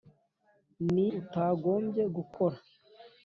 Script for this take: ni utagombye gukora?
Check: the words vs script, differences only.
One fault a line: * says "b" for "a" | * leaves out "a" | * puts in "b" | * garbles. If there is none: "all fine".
all fine